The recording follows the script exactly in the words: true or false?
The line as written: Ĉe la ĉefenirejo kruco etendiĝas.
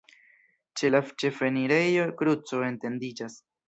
true